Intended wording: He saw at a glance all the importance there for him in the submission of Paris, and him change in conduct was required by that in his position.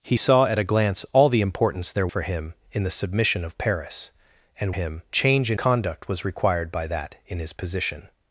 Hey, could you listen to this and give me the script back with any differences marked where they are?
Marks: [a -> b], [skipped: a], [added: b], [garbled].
He saw at a glance all the importance there for him in the submission of Paris, and him change in conduct was required by that in his position.